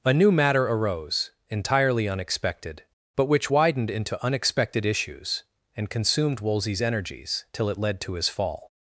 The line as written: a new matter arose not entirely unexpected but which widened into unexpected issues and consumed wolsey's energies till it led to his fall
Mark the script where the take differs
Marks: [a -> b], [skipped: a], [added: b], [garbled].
a new matter arose [skipped: not] entirely unexpected but which widened into unexpected issues and consumed wolsey's energies till it led to his fall